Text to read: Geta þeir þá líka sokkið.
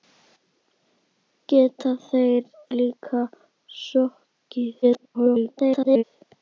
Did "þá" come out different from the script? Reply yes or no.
yes